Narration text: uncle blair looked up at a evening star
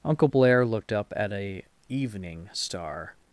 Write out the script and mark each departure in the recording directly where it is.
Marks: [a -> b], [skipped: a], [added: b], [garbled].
uncle blair looked up at a evening star